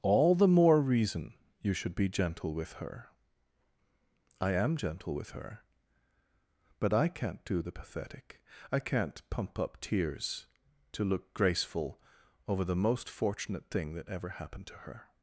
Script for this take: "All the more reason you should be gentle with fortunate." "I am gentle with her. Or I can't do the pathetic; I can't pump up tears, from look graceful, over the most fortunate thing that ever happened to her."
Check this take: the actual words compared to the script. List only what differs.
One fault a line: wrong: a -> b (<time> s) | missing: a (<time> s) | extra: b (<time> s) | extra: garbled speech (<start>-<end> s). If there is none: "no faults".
wrong: fortunate -> her (2.7 s)
wrong: Or -> But (6.8 s)
wrong: from -> to (10.9 s)